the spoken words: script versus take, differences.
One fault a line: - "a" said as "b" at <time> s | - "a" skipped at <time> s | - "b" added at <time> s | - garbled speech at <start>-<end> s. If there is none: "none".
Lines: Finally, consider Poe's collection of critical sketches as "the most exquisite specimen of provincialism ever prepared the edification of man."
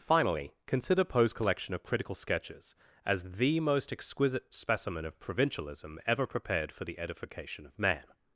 - "for" added at 6.7 s